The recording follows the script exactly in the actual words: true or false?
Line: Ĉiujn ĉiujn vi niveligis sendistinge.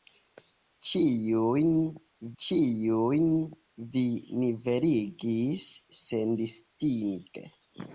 true